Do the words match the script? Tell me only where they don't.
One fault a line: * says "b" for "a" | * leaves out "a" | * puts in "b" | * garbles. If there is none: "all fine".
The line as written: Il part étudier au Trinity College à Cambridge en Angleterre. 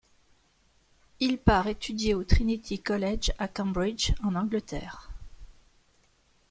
all fine